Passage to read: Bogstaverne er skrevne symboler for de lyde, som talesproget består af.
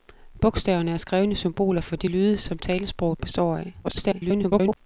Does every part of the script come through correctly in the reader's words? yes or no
no